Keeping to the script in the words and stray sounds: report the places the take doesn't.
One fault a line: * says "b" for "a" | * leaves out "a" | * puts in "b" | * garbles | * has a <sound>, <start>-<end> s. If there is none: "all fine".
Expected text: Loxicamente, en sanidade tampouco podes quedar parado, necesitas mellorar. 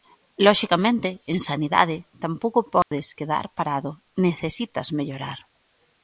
* has a dropout, 2.8-2.9 s